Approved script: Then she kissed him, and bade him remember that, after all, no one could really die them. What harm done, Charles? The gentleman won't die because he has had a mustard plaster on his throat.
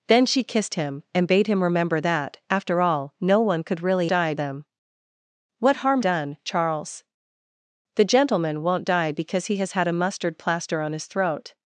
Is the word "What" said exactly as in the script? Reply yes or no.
yes